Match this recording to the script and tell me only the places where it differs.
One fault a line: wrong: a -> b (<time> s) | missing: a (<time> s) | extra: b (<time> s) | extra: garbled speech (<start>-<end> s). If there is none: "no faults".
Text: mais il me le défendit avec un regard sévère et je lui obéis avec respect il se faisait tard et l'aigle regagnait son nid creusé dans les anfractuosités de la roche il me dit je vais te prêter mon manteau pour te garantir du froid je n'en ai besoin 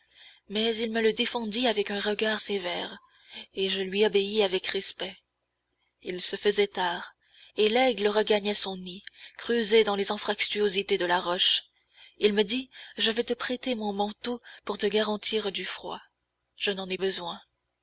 no faults